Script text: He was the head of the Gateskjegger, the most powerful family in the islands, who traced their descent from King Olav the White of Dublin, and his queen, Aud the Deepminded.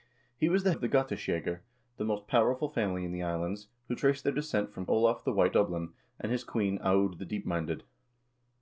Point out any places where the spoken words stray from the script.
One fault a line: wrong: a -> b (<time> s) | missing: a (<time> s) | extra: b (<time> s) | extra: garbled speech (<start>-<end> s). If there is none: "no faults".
missing: head (0.7 s)
missing: King (4.9 s)
missing: of (5.6 s)